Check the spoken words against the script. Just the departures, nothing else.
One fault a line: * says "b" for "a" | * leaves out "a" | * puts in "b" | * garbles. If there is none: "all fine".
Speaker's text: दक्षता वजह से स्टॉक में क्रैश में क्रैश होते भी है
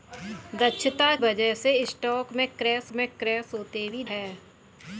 all fine